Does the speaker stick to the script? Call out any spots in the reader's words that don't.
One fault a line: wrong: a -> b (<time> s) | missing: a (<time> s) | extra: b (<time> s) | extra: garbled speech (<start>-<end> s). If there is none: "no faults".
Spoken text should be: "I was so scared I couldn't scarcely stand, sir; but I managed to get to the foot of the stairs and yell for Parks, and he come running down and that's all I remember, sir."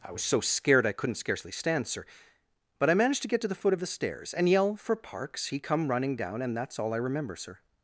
missing: and (5.5 s)